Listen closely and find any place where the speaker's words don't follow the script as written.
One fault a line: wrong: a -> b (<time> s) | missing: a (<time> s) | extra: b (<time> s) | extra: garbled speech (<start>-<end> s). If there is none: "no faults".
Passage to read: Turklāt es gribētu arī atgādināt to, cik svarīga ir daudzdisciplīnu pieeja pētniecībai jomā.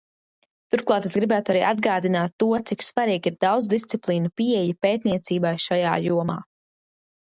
extra: šajā (5.7 s)